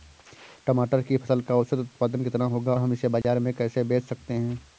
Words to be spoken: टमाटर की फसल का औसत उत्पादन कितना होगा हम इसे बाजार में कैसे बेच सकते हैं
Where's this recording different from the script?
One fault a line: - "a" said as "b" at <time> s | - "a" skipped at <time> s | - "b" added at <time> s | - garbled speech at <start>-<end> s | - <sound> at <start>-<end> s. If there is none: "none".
- dropout at 3.2-3.2 s